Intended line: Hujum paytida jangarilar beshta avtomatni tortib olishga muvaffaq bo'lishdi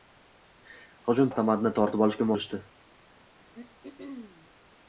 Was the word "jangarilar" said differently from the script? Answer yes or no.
yes